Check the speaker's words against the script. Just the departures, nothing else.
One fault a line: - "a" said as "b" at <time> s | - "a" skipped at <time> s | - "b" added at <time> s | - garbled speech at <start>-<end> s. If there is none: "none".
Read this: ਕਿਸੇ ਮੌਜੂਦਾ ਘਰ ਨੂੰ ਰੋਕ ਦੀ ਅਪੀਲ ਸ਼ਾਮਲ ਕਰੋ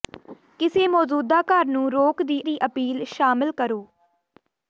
- "ਦੀ" added at 2.4 s